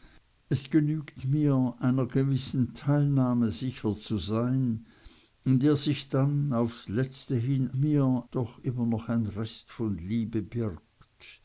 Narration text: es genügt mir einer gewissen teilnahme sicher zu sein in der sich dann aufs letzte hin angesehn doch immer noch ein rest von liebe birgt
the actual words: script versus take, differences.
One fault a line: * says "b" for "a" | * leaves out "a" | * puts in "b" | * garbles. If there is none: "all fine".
* says "mir" for "angesehn"